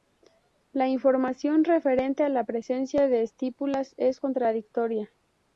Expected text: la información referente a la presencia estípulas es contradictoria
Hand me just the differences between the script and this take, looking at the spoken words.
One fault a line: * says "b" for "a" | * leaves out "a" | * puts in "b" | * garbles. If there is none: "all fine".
* puts in "de"